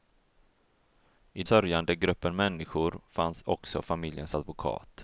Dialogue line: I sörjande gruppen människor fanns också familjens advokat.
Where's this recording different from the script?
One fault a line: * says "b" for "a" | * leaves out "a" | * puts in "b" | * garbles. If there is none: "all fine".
all fine